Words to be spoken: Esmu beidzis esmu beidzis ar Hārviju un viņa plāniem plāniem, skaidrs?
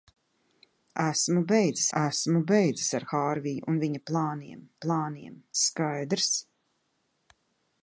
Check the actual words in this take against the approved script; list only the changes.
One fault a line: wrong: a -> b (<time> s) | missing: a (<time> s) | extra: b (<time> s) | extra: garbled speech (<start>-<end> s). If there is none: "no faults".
no faults